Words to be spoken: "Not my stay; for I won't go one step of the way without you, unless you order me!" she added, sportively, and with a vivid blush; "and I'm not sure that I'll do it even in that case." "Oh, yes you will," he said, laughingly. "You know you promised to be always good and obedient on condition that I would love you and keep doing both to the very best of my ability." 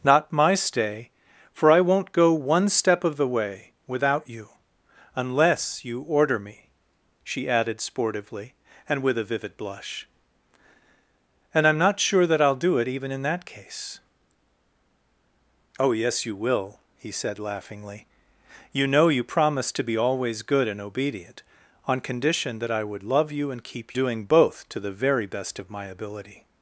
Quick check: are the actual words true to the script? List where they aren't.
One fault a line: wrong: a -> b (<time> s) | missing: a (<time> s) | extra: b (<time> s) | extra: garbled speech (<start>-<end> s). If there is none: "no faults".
no faults